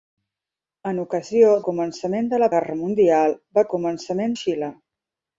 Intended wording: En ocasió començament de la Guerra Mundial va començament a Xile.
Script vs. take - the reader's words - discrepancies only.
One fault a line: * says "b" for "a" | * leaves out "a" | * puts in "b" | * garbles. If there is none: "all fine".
all fine